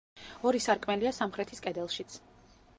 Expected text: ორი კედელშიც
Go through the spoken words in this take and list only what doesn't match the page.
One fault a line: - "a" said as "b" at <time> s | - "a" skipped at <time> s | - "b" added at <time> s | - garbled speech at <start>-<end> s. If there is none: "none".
- "სარკმელია სამხრეთის" added at 0.7 s